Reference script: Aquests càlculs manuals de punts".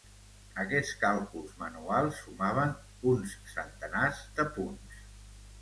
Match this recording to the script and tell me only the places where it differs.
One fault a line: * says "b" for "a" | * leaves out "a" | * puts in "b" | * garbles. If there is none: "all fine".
* puts in "sumaven uns centenars"